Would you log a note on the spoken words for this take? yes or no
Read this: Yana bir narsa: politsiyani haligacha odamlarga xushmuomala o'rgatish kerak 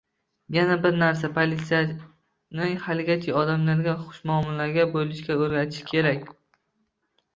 yes